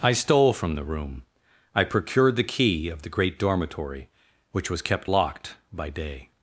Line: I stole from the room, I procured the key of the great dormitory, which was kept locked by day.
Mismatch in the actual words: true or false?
false